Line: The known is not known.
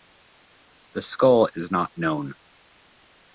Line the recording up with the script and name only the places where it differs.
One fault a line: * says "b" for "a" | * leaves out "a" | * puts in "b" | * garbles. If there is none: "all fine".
* says "skull" for "known"